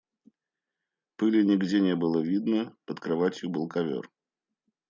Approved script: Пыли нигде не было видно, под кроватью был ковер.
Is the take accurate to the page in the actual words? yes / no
yes